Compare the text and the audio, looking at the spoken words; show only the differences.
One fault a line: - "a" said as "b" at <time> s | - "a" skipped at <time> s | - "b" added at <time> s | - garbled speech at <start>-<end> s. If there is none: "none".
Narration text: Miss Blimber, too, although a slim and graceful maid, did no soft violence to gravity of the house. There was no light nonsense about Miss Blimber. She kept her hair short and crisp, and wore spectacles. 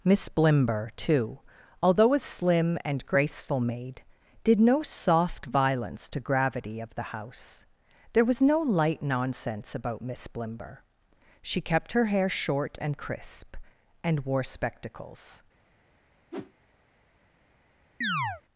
none